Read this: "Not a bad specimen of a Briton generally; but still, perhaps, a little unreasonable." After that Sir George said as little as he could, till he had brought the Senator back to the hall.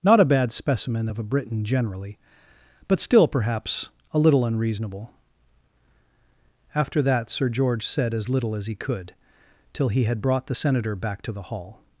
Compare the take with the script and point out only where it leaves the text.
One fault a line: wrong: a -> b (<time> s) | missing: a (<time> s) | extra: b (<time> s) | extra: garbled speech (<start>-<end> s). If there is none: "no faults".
no faults